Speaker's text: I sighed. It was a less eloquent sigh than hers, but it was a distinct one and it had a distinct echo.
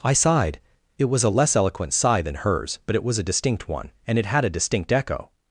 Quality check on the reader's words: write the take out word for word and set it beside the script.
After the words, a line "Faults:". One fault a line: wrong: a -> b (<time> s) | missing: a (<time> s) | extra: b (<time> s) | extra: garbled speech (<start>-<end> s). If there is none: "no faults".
I sighed. It was a less eloquent sigh than hers, but it was a distinct one and it had a distinct echo.
Faults:
no faults